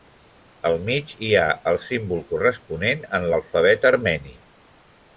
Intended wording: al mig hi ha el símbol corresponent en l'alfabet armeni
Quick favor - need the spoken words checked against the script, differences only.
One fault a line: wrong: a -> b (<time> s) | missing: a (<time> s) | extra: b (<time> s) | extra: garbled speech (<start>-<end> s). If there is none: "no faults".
no faults